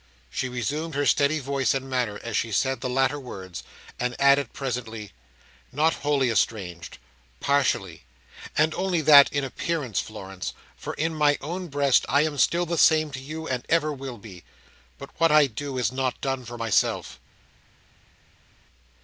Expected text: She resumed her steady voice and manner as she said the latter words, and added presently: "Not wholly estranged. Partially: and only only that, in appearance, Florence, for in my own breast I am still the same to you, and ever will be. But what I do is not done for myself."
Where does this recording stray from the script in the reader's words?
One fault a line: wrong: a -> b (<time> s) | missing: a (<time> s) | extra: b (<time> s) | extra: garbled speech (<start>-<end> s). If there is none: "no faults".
missing: only (9.0 s)